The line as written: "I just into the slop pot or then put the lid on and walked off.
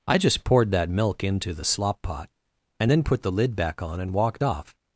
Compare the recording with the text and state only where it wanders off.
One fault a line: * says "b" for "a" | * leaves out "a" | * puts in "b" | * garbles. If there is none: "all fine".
* puts in "poured that milk"
* says "and" for "or"
* puts in "back"